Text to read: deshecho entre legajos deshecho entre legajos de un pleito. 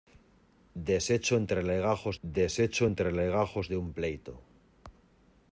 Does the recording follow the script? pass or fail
pass